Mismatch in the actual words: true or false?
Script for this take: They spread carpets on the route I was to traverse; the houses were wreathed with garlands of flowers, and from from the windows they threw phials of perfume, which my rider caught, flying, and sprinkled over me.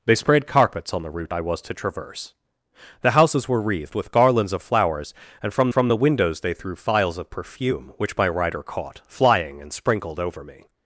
false